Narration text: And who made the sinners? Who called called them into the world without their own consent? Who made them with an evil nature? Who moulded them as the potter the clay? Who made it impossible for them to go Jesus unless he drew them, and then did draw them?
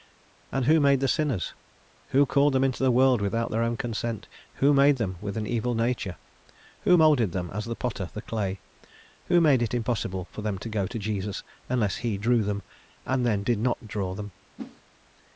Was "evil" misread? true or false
false